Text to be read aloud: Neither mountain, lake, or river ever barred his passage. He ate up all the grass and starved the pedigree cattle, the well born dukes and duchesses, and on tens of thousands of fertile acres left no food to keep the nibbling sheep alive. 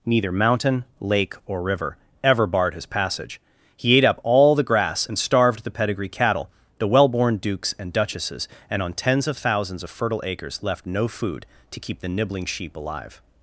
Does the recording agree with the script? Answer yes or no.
yes